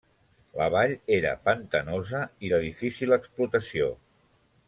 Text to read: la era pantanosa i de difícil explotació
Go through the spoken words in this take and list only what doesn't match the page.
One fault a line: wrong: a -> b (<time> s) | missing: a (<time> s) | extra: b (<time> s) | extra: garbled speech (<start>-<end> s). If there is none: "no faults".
extra: vall (0.8 s)